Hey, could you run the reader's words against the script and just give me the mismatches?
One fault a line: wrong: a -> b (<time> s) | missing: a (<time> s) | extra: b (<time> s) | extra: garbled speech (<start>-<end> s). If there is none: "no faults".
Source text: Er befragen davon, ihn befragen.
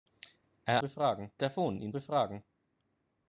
no faults